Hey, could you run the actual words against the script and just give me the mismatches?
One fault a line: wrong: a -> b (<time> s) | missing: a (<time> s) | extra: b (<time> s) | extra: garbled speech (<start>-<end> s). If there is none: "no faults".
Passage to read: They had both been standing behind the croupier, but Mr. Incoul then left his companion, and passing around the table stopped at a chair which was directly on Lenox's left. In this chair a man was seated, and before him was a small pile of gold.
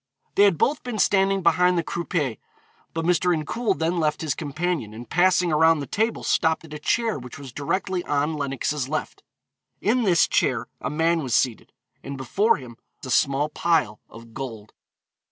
missing: was (12.8 s)